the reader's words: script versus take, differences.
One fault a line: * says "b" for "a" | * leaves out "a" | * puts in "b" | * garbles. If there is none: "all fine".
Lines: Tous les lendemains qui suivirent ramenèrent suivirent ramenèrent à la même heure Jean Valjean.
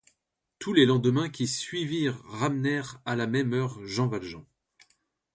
* leaves out "suivirent ramenèrent"